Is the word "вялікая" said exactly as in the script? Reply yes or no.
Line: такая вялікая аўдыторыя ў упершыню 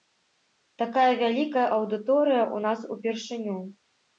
yes